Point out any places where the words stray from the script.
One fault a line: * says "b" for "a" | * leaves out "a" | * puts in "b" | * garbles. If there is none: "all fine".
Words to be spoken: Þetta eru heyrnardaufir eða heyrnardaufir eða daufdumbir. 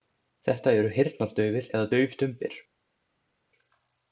* leaves out "heyrnardaufir eða"